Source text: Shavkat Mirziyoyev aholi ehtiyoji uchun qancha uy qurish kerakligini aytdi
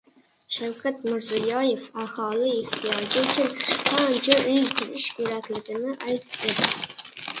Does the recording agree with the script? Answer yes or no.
yes